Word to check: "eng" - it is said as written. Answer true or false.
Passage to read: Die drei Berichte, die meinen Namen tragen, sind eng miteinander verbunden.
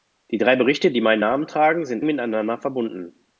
false